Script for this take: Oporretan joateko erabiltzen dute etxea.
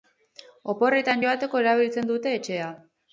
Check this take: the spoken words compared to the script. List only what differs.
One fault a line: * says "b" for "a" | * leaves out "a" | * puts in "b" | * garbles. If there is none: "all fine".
all fine